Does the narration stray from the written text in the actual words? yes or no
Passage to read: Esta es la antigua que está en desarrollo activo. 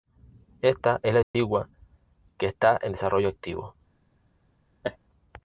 no